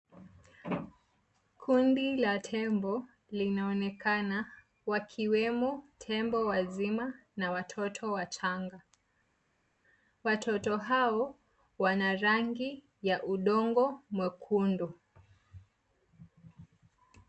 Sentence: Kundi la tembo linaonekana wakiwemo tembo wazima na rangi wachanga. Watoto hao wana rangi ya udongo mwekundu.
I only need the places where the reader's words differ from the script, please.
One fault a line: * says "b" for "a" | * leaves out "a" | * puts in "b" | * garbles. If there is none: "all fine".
* says "watoto" for "rangi"